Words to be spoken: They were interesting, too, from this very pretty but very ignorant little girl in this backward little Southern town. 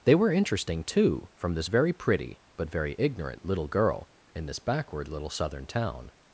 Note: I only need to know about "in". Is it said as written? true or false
true